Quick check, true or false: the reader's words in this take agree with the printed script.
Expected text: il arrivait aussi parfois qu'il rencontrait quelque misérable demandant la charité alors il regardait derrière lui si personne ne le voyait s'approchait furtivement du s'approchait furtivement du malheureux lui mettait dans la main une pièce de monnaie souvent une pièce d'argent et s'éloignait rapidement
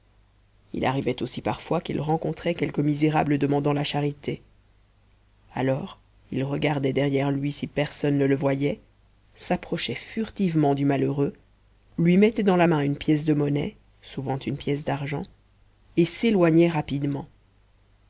false